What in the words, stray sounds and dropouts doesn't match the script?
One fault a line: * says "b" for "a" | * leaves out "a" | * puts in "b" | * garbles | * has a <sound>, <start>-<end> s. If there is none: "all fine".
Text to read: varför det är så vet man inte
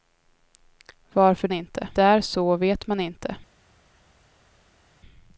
* says "inte" for "det"